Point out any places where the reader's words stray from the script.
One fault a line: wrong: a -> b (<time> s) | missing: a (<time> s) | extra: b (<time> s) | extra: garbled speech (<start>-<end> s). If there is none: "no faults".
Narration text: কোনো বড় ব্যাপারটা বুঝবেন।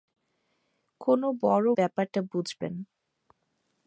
no faults